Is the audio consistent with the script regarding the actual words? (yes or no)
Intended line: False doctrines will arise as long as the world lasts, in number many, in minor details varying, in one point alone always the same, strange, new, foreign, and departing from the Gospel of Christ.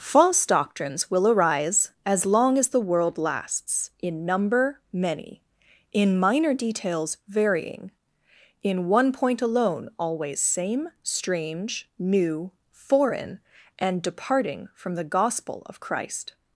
no